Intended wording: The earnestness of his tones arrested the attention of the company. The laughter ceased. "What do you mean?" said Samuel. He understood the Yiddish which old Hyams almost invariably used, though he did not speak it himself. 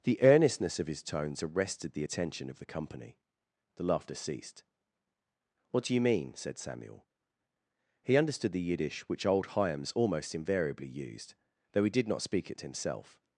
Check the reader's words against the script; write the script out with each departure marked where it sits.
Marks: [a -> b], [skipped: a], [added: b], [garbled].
The earnestness of his tones arrested the attention of the company. The laughter ceased. "What do you mean?" said Samuel. He understood the Yiddish which old Hyams almost invariably used, though he did not speak it himself.